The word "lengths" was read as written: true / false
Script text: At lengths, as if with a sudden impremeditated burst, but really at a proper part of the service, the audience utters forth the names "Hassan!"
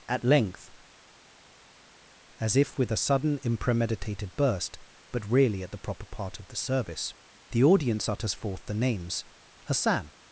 false